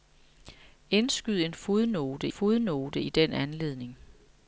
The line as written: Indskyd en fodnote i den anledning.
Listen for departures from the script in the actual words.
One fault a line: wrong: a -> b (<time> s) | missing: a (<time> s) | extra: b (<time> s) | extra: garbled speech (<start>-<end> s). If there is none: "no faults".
extra: fodnote (2.3 s)